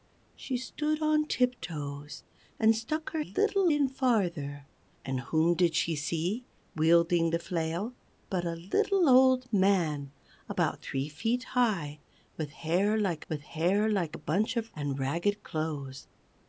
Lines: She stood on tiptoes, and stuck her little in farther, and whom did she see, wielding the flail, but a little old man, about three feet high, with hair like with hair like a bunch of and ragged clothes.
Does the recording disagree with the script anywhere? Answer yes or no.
no